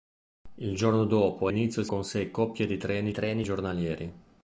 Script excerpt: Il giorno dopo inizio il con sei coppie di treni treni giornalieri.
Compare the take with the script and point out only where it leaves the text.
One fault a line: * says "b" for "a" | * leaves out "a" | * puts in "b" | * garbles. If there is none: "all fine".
all fine